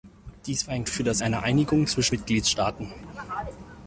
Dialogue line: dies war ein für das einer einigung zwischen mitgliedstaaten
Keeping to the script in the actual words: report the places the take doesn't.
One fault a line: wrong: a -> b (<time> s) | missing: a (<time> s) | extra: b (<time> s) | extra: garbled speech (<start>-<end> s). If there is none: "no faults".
no faults